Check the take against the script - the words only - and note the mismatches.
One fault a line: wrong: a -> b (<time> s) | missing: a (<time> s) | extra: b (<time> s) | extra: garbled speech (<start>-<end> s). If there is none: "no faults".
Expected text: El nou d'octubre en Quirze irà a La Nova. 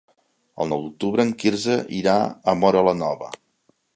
extra: Móra (2.6 s)